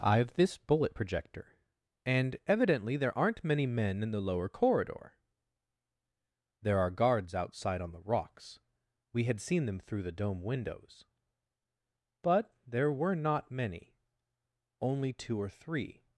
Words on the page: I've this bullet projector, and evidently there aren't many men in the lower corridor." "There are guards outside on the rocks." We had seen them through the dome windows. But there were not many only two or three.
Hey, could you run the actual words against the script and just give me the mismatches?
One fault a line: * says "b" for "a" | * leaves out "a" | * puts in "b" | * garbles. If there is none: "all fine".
all fine